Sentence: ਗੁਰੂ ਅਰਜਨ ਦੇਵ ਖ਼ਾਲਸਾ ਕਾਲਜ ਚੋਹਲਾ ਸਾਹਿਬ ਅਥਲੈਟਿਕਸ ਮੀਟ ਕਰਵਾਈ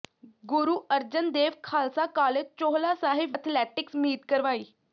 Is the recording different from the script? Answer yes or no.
no